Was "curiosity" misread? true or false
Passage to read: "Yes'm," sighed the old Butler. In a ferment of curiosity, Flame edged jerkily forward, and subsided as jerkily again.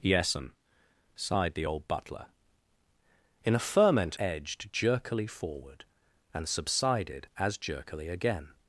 true